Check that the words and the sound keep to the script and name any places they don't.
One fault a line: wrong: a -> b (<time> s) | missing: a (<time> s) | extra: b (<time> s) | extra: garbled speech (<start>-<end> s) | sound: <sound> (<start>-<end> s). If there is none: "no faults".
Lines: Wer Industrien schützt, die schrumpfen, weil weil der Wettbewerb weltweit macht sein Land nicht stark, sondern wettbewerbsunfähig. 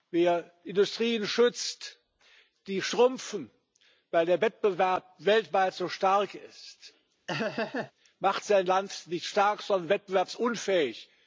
missing: weil (4.2 s)
extra: so stark ist (5.7 s)
sound: laugh (7.3-7.9 s)